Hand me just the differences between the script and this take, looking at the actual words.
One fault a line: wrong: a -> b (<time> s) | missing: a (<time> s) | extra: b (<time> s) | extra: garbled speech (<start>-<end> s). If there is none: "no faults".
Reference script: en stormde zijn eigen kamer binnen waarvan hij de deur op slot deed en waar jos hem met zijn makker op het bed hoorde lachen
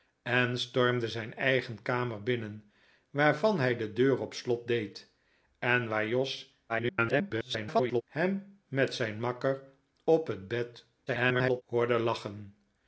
extra: garbled speech (6.7-8.0 s)
extra: garbled speech (11.1-11.6 s)